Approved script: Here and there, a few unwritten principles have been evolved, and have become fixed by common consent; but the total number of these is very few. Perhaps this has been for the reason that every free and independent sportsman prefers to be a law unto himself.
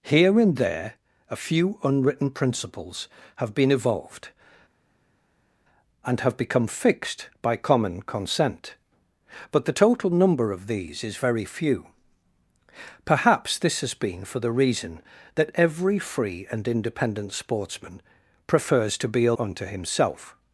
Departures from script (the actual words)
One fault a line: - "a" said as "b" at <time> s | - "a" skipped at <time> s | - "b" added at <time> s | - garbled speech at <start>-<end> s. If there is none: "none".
- "law" skipped at 19.3 s